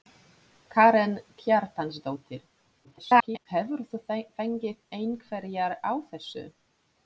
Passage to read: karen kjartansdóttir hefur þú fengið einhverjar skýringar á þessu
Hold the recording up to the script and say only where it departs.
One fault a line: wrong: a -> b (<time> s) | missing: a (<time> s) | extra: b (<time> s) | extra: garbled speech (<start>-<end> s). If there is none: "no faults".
extra: garbled speech (2.8-3.5 s)
missing: skýringar (5.8 s)